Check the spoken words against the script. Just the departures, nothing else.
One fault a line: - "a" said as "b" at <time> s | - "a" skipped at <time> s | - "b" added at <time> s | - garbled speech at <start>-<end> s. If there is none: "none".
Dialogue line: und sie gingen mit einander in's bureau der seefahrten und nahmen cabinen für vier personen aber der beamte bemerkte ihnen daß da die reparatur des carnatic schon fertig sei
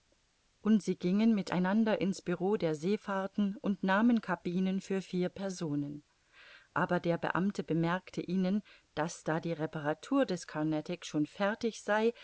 none